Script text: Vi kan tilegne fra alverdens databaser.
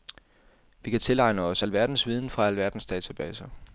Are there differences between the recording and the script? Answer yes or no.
yes